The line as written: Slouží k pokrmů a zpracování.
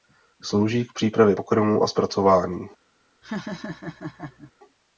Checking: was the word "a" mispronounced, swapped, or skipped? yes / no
no